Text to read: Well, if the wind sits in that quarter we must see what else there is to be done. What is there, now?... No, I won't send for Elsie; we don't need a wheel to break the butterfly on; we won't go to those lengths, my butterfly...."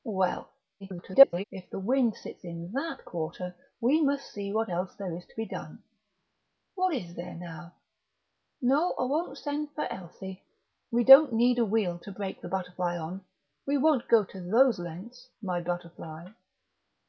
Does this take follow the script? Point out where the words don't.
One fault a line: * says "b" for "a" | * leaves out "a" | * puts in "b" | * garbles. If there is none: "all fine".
* garbles